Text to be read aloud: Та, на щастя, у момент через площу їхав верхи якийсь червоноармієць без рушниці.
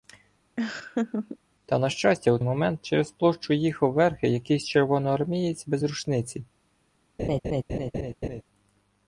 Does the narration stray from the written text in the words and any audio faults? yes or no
yes